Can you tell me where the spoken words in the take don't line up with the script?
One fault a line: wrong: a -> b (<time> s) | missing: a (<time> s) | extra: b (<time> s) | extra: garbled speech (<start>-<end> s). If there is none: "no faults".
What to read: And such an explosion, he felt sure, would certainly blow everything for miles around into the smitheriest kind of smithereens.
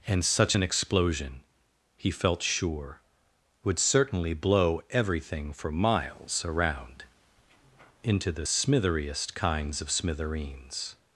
wrong: kind -> kinds (9.3 s)